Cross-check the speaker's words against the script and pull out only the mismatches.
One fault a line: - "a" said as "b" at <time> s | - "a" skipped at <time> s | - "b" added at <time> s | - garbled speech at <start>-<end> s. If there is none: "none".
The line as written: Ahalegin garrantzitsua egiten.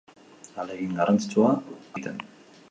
none